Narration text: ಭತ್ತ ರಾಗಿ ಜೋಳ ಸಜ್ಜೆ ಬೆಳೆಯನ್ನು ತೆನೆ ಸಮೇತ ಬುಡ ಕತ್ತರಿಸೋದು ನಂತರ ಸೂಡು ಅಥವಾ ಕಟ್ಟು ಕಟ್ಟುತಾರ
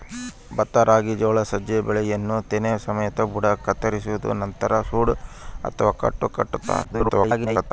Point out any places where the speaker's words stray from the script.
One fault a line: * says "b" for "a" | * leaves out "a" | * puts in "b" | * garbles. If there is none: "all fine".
* garbles